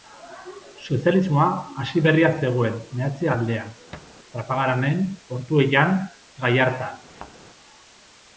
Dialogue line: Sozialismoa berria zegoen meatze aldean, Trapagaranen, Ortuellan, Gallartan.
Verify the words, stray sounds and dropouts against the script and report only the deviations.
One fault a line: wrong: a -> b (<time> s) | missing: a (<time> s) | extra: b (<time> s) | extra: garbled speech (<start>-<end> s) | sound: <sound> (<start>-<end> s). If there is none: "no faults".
extra: hasi (1.8 s)
sound: thud (3.9-4.2 s)
sound: thud (7.1-7.3 s)